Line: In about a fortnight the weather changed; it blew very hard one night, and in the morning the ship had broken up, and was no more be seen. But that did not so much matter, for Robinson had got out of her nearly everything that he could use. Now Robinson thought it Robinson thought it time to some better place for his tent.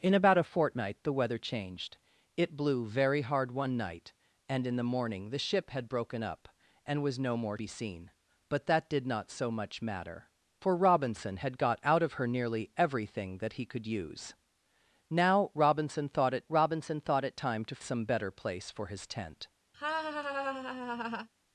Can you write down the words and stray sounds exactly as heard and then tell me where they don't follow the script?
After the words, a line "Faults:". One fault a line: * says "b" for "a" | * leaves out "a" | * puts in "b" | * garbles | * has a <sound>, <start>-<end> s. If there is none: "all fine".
In about a fortnight the weather changed; it blew very hard one night, and in the morning the ship had broken up, and was no more be seen. But that did not so much matter, for Robinson had got out of her nearly everything that he could use. Now Robinson thought it Robinson thought it time to some better place for his tent.
Faults:
* has a laugh, 19.7-21.3 s